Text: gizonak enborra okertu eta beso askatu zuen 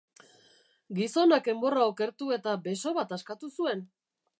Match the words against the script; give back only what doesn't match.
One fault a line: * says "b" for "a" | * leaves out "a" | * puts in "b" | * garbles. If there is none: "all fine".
* puts in "bat"